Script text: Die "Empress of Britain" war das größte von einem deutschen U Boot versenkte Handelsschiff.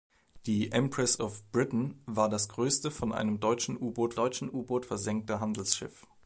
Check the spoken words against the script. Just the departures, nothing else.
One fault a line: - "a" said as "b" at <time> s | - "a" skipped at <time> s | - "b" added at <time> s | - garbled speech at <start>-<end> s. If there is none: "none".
- "deutschen U Boot" added at 4.1 s